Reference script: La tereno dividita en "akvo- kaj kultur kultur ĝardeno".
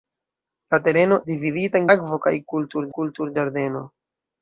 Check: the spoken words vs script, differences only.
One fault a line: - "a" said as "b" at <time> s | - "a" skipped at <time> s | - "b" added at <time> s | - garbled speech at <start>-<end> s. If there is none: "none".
none